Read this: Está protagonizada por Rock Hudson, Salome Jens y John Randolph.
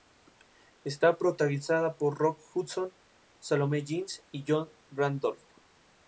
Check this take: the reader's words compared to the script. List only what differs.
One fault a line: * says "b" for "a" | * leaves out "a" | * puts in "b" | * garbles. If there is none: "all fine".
all fine